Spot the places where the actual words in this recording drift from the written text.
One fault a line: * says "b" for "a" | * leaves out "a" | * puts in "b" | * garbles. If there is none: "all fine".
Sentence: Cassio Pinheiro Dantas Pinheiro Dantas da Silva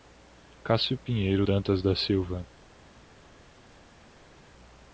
* leaves out "Pinheiro Dantas"